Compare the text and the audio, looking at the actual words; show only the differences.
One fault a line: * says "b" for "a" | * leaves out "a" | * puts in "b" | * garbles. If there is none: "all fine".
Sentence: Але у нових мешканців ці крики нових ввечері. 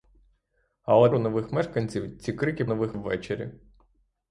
all fine